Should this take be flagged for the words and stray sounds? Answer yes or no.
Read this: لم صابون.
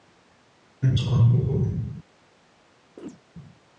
yes